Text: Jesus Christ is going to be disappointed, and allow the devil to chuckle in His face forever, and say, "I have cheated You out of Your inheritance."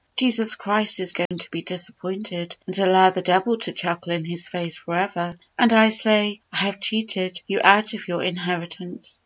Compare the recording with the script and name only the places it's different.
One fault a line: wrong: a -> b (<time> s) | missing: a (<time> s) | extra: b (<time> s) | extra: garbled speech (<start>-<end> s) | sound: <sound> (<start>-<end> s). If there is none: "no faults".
sound: dropout (1.3-1.3 s)